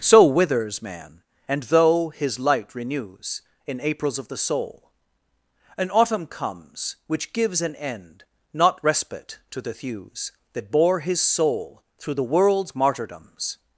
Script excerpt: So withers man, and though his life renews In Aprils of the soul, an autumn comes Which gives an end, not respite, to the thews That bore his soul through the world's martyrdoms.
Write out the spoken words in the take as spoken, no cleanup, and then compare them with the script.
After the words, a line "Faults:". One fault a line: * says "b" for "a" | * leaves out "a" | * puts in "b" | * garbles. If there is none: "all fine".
So withers man, and though his light renews In Aprils of the soul, an autumn comes Which gives an end, not respite, to the thews That bore his soul through the world's martyrdoms.
Faults:
* says "light" for "life"